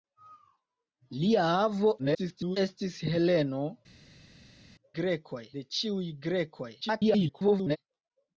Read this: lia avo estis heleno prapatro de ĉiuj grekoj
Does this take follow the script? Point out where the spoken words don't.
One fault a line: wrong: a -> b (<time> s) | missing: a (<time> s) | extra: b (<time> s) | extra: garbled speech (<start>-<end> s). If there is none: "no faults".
extra: garbled speech (2.0-2.6 s)
wrong: prapatro -> grekoj (5.0 s)
extra: garbled speech (6.8-7.8 s)